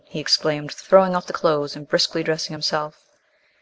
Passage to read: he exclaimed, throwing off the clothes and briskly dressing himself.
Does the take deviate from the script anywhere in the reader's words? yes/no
no